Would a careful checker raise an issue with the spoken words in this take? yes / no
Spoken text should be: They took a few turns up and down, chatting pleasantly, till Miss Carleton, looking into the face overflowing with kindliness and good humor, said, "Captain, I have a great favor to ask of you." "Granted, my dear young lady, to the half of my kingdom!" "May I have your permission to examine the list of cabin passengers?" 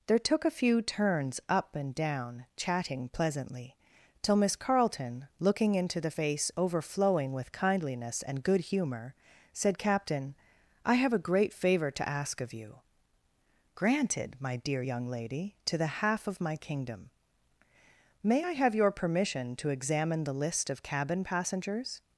yes